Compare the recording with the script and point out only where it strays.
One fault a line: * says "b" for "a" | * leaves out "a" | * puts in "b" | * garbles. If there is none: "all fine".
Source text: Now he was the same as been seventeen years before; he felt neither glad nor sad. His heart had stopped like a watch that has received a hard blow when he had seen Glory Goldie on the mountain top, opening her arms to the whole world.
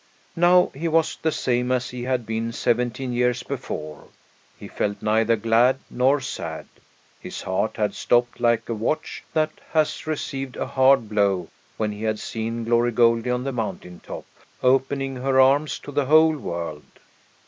* puts in "he had"